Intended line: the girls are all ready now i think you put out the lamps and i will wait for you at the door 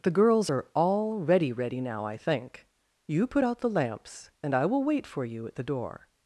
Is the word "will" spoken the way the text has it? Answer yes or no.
yes